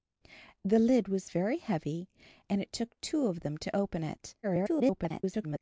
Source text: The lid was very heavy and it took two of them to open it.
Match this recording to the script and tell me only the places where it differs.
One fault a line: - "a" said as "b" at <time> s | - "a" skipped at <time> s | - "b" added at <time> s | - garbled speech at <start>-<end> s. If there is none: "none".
- garbled speech at 4.4-5.6 s